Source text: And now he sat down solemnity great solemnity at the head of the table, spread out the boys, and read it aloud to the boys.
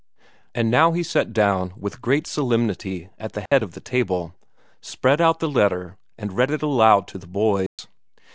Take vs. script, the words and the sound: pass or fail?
fail